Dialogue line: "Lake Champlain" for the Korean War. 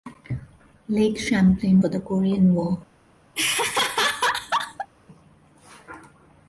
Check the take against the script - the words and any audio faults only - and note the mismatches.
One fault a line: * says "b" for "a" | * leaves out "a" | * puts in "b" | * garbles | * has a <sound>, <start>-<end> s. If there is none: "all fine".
* has a laugh, 3.4-4.9 s